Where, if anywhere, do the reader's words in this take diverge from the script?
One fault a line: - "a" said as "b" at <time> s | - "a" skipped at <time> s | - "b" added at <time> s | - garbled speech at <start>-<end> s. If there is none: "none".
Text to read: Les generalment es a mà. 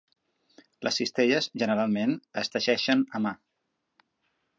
- "cistelles" added at 1.0 s
- "teixeixen" added at 2.5 s